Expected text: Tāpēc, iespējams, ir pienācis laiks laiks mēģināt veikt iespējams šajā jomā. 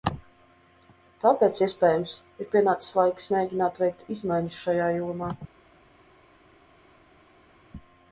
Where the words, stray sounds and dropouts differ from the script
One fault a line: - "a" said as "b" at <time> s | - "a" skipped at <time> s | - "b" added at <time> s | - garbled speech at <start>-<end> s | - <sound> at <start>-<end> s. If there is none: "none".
- "laiks" skipped at 3.3 s
- "iespējams" said as "izmaiņas" at 4.2 s